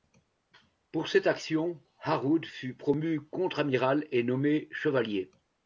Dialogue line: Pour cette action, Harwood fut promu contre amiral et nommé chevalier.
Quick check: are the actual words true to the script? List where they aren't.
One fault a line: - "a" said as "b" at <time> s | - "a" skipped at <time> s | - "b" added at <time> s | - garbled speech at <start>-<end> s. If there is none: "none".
none